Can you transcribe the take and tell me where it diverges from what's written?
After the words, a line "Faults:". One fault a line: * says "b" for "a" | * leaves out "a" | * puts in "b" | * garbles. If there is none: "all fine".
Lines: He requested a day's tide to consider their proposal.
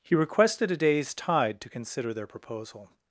He requested a day's tide to consider their proposal.
Faults:
all fine